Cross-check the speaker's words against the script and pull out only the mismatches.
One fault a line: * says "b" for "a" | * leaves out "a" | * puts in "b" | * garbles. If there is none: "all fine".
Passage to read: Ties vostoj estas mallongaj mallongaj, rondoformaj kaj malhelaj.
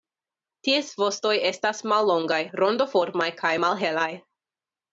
* leaves out "mallongaj"